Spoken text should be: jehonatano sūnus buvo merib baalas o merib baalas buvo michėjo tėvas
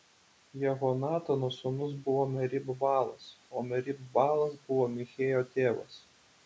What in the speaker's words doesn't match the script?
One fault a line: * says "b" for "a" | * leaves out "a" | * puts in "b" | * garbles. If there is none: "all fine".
all fine